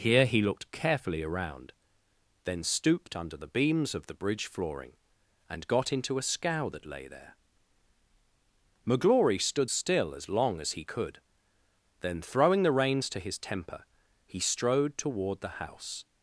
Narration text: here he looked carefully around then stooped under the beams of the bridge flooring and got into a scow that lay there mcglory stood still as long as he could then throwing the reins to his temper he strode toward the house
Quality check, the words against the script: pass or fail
pass